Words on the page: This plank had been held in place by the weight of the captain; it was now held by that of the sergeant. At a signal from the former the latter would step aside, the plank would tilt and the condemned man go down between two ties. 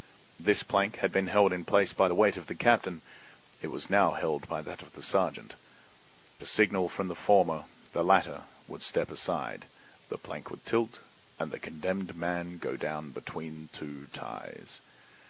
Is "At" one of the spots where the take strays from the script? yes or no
yes